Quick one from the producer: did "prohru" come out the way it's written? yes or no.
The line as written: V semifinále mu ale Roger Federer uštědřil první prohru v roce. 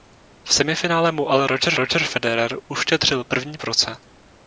no